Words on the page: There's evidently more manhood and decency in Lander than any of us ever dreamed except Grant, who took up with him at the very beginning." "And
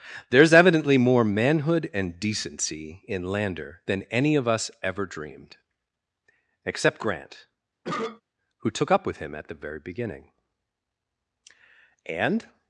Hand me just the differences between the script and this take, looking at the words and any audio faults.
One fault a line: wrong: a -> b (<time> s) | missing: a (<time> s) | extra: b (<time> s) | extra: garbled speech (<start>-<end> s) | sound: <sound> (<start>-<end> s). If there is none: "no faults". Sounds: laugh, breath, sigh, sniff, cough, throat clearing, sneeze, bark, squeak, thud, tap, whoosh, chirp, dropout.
sound: cough (7.8-8.2 s)